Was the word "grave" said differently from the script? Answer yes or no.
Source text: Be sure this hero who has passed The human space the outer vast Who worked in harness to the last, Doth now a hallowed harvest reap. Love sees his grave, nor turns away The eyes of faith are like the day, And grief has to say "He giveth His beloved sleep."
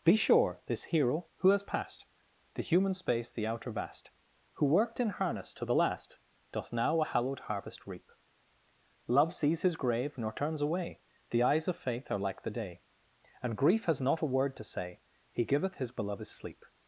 no